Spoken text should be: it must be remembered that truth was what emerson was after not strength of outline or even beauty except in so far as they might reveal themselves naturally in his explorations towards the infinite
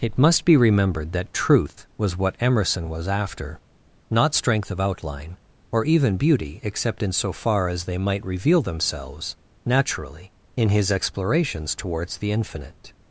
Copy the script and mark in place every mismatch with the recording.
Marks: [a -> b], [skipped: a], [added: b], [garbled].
it must be remembered that truth was what emerson was after not strength of outline or even beauty except in so far as they might reveal themselves naturally in his explorations towards the infinite